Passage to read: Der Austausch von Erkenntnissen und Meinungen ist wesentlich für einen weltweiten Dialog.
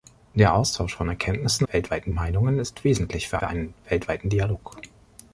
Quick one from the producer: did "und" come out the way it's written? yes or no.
no